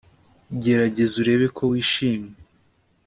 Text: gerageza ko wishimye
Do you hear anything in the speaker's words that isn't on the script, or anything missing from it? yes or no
yes